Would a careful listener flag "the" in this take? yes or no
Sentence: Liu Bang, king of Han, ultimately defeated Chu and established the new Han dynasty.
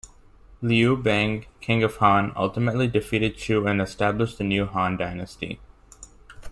no